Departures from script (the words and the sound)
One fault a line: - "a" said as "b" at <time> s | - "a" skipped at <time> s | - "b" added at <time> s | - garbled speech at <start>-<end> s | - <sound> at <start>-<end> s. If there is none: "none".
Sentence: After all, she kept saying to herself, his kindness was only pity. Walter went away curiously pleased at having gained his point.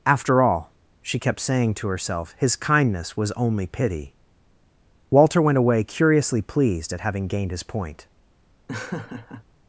- laugh at 8.7-9.5 s